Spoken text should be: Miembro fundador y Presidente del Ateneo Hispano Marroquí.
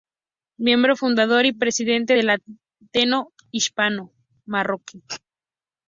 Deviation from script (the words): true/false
false